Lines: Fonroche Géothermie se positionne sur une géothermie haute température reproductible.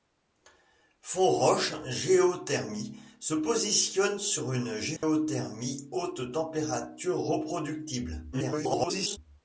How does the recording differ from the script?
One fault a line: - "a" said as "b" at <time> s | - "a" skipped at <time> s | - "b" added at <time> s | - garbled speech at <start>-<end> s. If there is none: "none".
- garbled speech at 8.3-9.2 s